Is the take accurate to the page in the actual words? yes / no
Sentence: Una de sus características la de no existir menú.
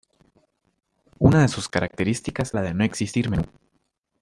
yes